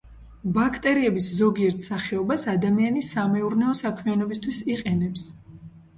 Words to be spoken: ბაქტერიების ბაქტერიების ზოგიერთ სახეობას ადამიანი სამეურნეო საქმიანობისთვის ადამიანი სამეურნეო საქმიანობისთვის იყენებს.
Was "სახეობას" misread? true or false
false